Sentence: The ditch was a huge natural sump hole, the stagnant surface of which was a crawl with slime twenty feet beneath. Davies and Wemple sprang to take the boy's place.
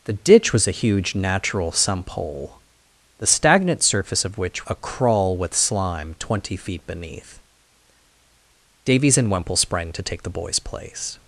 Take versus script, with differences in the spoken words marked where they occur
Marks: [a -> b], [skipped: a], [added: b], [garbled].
The ditch was a huge natural sump hole, the stagnant surface of which [skipped: was] a crawl with slime twenty feet beneath. Davies and Wemple sprang to take the boy's place.